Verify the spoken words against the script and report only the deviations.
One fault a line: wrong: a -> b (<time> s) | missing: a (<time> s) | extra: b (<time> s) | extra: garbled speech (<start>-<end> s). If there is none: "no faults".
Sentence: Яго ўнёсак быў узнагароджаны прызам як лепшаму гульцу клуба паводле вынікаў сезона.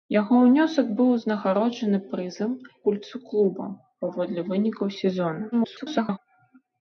missing: як лепшаму (2.5 s)
extra: garbled speech (5.5-6.2 s)